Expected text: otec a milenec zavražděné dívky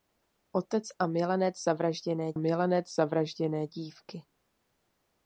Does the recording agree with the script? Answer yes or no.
no